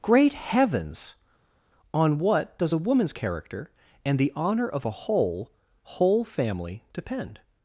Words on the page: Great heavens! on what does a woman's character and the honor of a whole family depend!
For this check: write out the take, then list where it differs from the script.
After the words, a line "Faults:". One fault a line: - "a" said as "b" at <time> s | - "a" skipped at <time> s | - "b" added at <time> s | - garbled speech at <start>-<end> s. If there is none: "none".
Great heavens! on what does a woman's character and the honor of a whole whole family depend!
Faults:
- "whole" added at 5.8 s